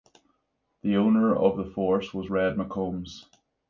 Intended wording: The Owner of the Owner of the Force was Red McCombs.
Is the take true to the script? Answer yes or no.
no